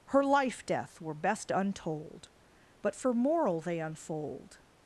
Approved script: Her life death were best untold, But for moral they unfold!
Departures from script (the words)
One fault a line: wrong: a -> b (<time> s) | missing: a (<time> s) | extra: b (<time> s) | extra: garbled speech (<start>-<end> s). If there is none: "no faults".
no faults